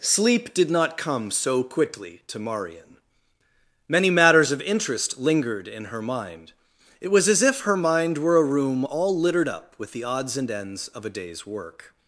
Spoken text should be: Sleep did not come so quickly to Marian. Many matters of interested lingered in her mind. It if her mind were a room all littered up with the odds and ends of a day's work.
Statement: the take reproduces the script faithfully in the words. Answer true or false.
false